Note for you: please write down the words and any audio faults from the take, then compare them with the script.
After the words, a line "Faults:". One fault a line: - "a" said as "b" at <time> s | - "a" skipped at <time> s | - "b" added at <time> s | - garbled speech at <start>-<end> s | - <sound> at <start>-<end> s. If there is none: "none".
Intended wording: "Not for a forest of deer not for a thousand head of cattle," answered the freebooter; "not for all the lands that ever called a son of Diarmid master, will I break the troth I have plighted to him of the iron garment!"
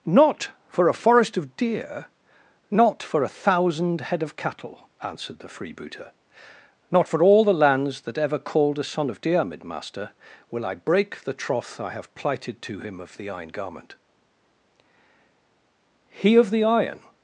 "Not for a forest of deer not for a thousand head of cattle," answered the freebooter; "not for all the lands that ever called a son of Diarmid master, will I break the troth I have plighted to him of the iron garment!" "He of the iron
Faults:
- "He of the iron" added at 16.1 s